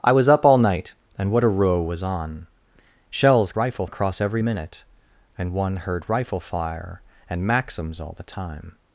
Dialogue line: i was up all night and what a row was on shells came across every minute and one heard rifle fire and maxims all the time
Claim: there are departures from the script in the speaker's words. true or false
true